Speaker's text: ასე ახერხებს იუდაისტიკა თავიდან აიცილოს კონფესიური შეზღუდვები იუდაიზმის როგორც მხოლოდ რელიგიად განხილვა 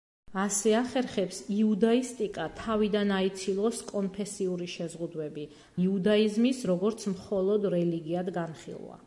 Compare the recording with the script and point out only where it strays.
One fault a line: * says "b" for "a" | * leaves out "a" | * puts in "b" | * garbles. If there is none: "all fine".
all fine